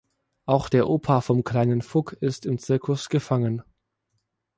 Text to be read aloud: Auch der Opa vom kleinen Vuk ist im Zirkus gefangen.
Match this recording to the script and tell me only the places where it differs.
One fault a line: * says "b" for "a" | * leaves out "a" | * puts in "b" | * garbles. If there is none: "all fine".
all fine